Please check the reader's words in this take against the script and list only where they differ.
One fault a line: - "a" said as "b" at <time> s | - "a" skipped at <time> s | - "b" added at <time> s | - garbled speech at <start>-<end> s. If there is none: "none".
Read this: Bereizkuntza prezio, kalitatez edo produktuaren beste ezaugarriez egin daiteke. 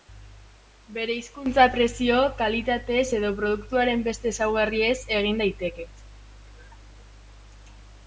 none